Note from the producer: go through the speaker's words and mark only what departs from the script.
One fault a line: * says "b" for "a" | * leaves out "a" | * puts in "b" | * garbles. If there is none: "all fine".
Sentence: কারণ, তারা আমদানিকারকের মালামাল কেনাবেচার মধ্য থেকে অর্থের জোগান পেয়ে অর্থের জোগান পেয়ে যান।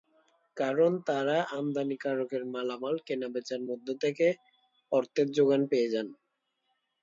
* leaves out "অর্থের জোগান পেয়ে"